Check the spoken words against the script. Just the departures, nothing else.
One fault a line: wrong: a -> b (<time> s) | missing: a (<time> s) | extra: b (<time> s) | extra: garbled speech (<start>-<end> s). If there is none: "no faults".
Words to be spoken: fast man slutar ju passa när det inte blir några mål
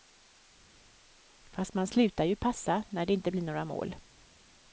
no faults